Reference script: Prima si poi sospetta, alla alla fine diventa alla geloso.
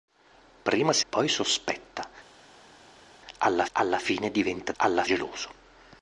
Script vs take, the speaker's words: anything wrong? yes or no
no